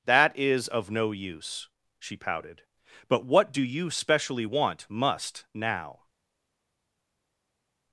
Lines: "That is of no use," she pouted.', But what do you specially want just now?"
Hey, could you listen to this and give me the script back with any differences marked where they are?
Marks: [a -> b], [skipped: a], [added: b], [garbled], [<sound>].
"That is of no use," she pouted.', But what do you specially want [just -> must] now?"